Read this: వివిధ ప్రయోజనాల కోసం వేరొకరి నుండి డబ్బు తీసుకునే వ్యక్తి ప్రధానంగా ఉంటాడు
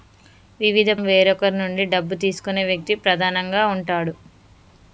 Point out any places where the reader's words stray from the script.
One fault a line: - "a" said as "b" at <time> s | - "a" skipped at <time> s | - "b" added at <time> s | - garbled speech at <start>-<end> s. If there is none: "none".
- "ప్రయోజనాల కోసం" skipped at 0.9 s